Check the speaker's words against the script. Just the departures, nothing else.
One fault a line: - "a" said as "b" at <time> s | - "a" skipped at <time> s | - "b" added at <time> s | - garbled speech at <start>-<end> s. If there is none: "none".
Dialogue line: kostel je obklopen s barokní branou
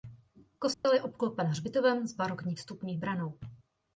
- "hřbitovem" added at 1.5 s
- "vstupní" added at 2.5 s